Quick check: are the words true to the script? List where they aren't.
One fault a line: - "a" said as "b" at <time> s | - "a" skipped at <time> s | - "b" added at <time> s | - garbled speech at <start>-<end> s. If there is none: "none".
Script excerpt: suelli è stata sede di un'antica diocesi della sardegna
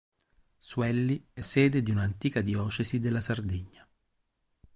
- "stata" skipped at 1.4 s